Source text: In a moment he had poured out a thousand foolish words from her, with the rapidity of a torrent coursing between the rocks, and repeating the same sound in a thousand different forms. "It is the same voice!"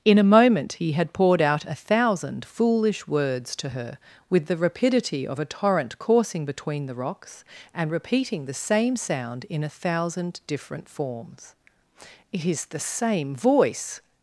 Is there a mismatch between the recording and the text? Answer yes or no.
yes